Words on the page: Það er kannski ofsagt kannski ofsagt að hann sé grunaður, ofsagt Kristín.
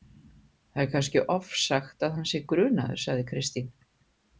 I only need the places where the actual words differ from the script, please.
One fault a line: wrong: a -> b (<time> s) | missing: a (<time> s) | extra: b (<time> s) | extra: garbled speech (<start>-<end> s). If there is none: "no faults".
missing: kannski ofsagt (2.1 s)
wrong: ofsagt -> sagði (3.1 s)